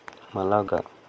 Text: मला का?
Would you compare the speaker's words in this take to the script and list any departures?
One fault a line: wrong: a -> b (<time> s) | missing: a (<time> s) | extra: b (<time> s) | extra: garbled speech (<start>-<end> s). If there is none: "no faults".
no faults